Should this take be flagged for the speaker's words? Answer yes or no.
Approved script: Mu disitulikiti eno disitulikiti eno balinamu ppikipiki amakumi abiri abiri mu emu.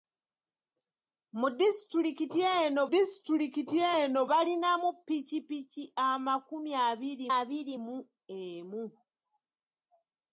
no